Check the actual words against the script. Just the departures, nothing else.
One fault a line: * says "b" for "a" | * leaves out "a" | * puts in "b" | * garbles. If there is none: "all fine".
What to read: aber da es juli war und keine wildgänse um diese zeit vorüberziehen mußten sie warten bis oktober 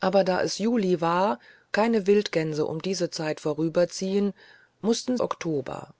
* leaves out "und"
* leaves out "sie warten bis"